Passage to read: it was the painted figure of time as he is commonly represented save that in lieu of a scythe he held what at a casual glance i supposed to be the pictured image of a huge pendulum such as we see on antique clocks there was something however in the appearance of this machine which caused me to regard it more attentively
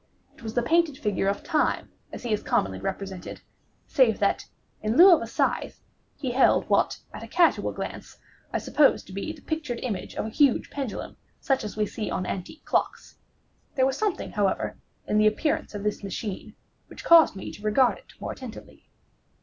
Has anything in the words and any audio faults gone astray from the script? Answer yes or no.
no